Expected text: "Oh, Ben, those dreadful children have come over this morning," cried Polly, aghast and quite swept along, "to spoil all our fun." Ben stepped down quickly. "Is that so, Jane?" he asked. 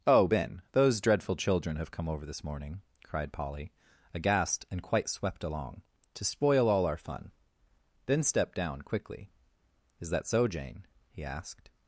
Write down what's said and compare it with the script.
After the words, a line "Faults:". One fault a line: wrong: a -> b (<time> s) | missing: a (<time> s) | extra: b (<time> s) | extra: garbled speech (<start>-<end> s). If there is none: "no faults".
"Oh, Ben, those dreadful children have come over this morning," cried Polly, aghast and quite swept along, "to spoil all our fun." Then stepped down quickly. "Is that so, Jane?" he asked.
Faults:
wrong: Ben -> Then (8.0 s)